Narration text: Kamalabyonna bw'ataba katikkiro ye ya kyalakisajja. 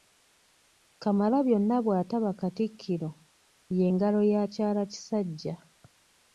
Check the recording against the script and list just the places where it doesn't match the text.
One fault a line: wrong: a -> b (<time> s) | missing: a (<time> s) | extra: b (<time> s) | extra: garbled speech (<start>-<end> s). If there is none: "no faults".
extra: ngalo (3.9 s)